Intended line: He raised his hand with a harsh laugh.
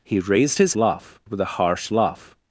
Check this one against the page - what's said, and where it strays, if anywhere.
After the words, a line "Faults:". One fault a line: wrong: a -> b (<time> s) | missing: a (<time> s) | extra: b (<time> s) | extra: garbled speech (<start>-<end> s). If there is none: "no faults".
He raised his laugh with a harsh laugh.
Faults:
wrong: hand -> laugh (0.8 s)